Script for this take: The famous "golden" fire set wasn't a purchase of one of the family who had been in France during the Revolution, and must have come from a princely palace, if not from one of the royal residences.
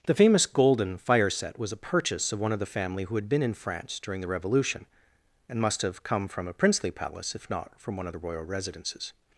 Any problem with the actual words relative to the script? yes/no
yes